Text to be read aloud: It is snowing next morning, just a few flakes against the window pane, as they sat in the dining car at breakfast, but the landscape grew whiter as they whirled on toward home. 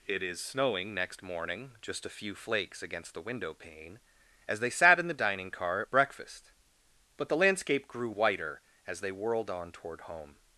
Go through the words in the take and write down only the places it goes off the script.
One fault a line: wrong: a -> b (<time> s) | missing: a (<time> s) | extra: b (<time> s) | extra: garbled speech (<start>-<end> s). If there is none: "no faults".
no faults